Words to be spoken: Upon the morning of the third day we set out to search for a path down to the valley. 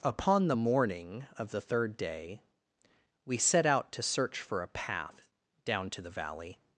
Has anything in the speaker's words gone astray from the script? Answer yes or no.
no